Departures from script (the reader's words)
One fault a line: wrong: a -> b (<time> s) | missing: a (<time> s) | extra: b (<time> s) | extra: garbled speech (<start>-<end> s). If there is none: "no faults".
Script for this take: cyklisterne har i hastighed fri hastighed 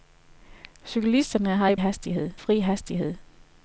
no faults